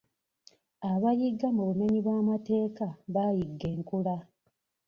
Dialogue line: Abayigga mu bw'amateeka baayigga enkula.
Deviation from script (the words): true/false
true